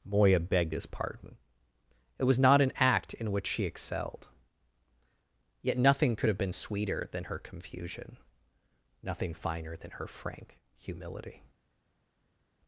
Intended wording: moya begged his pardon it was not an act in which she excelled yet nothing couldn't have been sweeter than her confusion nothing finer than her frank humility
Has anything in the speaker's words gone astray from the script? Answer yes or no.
yes